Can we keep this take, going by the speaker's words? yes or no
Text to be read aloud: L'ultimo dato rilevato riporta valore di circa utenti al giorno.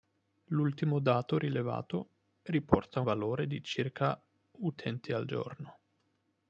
yes